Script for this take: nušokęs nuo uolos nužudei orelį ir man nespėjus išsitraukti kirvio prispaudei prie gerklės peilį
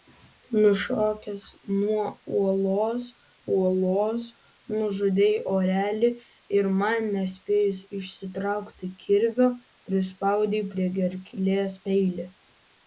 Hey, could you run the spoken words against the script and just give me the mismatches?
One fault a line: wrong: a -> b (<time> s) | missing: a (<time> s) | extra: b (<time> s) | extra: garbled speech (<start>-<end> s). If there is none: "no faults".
extra: uolos (3.5 s)